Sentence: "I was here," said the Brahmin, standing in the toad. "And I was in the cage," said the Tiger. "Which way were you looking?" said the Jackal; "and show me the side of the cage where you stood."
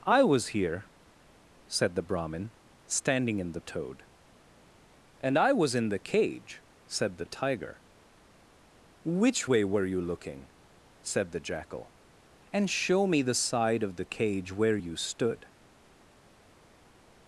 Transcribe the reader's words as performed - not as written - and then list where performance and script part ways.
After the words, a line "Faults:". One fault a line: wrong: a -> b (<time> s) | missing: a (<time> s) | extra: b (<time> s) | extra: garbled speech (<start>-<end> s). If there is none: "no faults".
"I was here," said the Brahmin, standing in the toad. "And I was in the cage," said the Tiger. "Which way were you looking?" said the Jackal; "and show me the side of the cage where you stood."
Faults:
no faults